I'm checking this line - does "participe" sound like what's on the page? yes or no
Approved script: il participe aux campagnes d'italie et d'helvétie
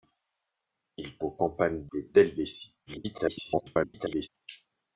no